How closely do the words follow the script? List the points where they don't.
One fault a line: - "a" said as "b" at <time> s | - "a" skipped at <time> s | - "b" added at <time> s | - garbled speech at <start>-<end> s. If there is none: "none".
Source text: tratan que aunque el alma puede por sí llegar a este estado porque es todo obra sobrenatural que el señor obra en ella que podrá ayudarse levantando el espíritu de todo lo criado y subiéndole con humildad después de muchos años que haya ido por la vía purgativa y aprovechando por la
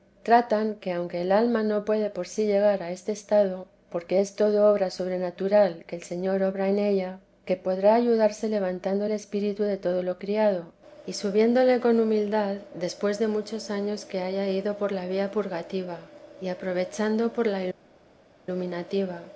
- "no" added at 1.6 s